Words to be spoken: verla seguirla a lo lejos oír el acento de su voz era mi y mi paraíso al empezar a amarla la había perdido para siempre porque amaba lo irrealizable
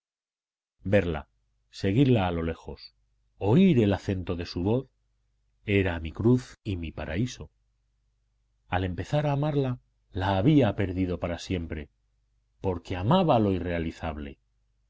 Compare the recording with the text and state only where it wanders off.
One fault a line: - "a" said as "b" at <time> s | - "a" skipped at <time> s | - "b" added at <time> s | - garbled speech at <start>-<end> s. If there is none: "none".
- "cruz" added at 6.1 s